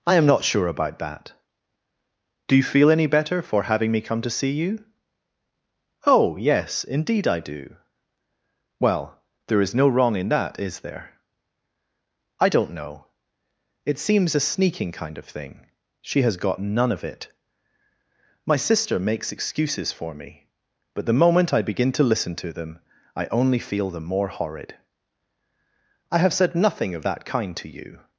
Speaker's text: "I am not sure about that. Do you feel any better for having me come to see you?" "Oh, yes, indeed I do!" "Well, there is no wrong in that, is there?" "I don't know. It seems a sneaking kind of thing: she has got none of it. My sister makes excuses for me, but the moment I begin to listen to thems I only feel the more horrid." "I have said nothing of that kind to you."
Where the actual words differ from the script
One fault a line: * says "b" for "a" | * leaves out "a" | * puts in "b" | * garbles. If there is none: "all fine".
* says "them" for "thems"